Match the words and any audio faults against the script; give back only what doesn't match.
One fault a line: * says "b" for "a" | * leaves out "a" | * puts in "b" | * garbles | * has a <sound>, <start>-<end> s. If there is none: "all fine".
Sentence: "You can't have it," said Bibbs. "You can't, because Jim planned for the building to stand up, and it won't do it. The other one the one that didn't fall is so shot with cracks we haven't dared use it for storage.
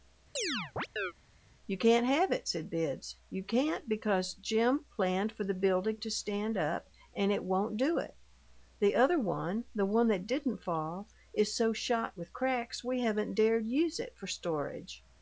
* has a chirp, 0.4-1.1 s